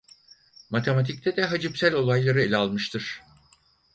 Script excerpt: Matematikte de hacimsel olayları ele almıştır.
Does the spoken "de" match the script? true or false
true